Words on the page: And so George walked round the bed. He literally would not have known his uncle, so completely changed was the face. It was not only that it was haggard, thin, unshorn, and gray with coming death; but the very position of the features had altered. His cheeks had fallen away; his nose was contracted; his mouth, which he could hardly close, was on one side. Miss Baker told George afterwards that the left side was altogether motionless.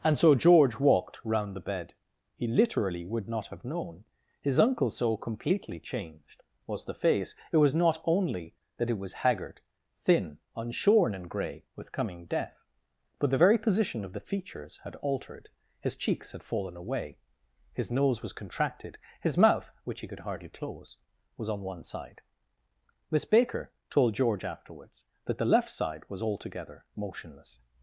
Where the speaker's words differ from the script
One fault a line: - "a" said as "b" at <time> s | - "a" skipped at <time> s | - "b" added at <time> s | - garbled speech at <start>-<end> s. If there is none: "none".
none